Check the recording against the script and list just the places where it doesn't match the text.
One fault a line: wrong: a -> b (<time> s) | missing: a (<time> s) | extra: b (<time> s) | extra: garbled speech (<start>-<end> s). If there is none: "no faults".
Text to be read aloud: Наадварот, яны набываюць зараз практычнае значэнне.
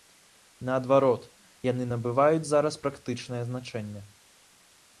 no faults